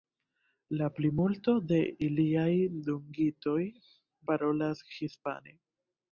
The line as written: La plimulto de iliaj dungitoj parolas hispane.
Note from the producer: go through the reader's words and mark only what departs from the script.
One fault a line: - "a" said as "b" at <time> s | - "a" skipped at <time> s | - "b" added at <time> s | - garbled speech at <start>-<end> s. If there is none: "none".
none